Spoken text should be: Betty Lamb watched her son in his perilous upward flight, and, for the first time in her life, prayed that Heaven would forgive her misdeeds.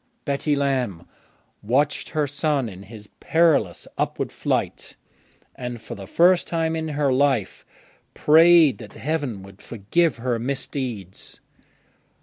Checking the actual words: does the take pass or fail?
pass